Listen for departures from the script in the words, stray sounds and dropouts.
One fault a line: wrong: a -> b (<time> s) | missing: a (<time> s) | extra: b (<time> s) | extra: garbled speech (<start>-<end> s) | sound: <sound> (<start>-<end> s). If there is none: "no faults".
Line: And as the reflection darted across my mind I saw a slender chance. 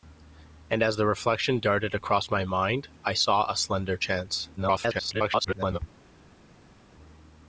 extra: garbled speech (4.6-5.8 s)